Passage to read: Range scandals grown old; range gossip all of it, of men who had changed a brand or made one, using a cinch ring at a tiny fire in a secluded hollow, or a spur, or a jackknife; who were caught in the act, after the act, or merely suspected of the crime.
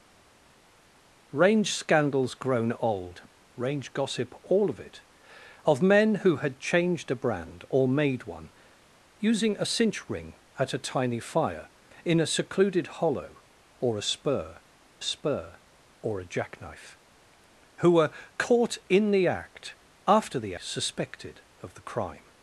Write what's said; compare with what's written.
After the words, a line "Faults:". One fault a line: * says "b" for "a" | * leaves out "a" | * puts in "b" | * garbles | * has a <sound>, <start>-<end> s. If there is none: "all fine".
Range scandals grown old; range gossip all of it, of men who had changed a brand or made one, using a cinch ring at a tiny fire in a secluded hollow, or a spur spur, or a jackknife; who were caught in the act, after the suspected of the crime.
Faults:
* puts in "spur"
* leaves out "act or merely"